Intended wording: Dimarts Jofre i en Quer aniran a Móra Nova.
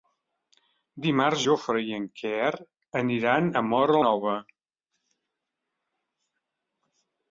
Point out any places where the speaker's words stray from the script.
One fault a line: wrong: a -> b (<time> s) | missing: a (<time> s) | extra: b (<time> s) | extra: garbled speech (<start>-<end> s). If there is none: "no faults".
no faults